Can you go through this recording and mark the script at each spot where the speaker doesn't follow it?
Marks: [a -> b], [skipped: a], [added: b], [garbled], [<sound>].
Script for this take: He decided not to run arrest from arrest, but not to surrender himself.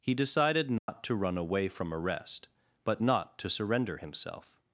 He decided not [dropout] to run [arrest -> away] from arrest, but not to surrender himself.